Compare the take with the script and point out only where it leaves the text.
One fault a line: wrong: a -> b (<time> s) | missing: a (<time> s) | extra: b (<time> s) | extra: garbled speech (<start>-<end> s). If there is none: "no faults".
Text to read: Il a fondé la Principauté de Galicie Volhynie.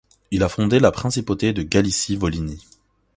no faults